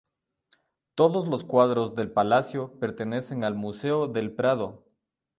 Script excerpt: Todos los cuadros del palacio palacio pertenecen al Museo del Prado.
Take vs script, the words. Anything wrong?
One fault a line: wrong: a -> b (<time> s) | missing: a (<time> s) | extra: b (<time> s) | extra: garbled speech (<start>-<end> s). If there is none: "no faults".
missing: palacio (2.8 s)